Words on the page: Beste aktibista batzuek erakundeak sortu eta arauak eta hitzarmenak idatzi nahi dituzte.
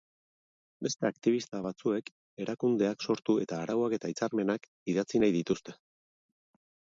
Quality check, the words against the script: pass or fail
pass